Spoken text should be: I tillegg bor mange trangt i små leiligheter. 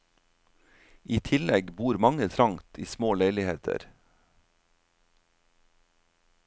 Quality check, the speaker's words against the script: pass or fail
pass